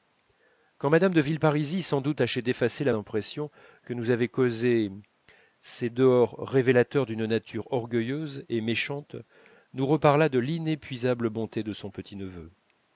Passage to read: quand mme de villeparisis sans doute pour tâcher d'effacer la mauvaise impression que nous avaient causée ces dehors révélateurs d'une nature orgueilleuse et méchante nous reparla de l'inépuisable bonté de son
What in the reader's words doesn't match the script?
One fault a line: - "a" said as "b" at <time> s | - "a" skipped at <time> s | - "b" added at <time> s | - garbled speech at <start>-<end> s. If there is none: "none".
- "pour" skipped at 2.2 s
- "mauvaise" skipped at 2.9 s